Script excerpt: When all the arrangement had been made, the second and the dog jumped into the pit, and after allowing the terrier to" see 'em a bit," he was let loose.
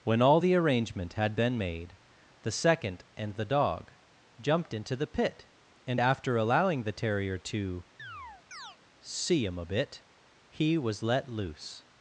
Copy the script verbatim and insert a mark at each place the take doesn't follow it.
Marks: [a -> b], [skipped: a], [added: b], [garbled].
When all the arrangement had been made, the second and the dog jumped into the pit, and after allowing the terrier to" see 'em a bit," he was let loose.